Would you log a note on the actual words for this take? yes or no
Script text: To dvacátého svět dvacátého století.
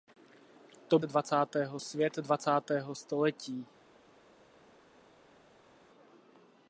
no